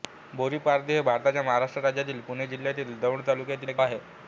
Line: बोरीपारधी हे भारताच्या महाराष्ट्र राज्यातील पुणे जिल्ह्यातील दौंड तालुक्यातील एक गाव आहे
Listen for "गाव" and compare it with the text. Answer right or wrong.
wrong